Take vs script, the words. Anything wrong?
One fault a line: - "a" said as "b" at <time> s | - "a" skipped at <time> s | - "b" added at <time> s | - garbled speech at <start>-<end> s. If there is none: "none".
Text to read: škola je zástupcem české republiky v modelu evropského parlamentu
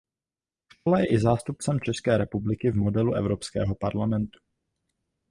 - "i" added at 1.1 s